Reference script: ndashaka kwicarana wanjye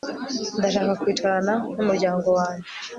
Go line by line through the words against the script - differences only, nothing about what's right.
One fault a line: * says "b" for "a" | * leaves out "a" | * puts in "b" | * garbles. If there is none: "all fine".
* puts in "numuryango"